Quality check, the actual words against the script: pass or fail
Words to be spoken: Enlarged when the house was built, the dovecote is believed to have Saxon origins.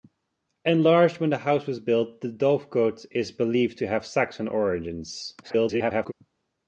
fail